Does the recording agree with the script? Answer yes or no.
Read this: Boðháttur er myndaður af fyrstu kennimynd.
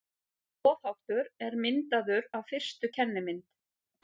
yes